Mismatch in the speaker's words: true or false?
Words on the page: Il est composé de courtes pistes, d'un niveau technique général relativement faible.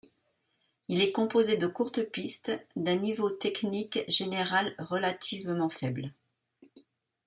false